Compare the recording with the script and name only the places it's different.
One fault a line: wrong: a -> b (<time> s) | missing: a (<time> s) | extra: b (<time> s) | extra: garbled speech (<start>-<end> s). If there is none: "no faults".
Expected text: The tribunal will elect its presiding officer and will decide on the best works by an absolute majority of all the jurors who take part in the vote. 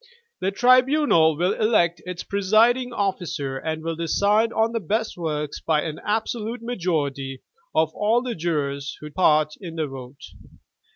missing: take (9.1 s)